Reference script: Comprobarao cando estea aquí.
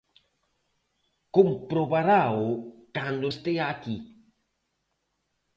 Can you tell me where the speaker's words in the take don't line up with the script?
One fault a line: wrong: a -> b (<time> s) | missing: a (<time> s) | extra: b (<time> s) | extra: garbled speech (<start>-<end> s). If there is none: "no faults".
no faults